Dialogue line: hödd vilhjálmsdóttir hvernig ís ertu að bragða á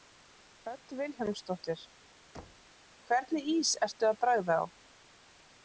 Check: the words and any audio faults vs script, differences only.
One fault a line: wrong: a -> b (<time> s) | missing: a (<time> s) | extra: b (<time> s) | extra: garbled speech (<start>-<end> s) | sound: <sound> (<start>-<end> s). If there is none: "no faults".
sound: thud (2.3-2.7 s)